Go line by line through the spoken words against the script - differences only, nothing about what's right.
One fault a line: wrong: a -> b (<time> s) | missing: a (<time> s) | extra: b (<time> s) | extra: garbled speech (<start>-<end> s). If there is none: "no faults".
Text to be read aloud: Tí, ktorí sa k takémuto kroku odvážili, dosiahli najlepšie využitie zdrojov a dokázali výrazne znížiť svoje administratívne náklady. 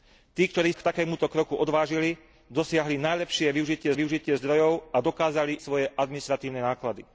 missing: sa (0.7 s)
extra: využitie (3.9 s)
missing: výrazne znížiť (5.6 s)